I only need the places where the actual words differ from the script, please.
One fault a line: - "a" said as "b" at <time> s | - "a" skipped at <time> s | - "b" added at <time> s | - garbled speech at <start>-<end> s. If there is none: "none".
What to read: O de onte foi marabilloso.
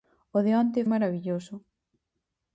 - "foi" skipped at 0.8 s